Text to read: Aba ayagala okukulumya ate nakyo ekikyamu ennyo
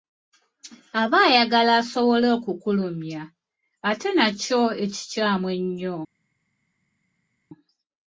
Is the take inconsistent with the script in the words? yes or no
yes